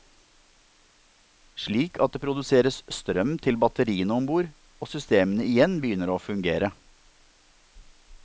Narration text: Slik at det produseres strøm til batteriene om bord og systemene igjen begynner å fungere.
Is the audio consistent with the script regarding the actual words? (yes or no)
yes